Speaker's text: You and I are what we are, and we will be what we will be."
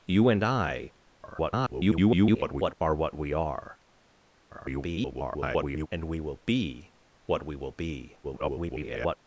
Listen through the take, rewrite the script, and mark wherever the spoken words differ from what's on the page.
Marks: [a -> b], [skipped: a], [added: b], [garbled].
You and I [garbled] are what we are, [garbled] and we will be what we will be." [garbled]